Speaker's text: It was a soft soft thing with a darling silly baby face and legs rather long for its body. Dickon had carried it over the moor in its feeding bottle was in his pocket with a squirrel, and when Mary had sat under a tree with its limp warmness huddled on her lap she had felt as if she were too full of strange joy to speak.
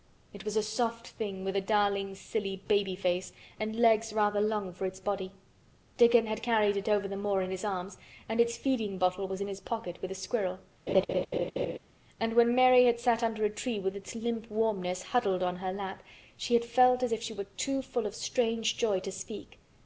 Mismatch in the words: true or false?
true